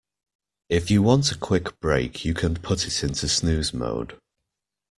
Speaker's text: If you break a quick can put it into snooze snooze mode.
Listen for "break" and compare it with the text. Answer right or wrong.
wrong